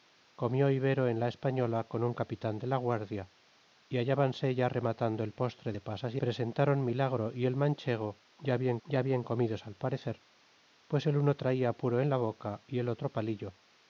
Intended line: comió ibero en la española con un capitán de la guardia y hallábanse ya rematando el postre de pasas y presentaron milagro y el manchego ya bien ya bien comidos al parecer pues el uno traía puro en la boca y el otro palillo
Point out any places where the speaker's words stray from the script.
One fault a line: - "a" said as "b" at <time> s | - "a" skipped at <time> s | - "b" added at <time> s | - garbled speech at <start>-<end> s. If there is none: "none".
none